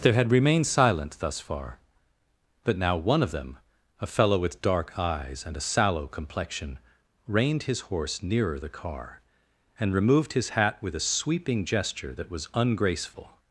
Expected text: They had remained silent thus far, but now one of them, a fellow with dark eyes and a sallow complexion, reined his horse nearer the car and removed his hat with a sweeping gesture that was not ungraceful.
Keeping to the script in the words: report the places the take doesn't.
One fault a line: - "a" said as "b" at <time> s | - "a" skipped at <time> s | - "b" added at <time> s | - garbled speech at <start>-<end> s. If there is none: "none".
- "not" skipped at 12.5 s